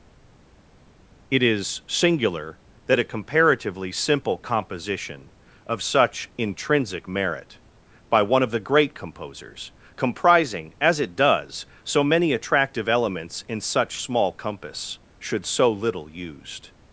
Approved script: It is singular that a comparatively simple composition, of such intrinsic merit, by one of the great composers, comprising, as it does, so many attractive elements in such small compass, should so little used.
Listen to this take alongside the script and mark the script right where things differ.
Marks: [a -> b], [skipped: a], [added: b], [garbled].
It is singular that a comparatively simple composition, of such intrinsic merit, by one of the great composers, comprising, as it does, so many attractive elements in such small compass, should so little used.